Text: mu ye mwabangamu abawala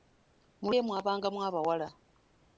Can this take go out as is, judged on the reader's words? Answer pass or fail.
pass